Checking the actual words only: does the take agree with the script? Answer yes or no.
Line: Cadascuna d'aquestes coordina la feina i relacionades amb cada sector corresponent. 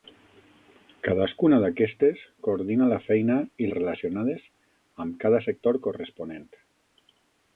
yes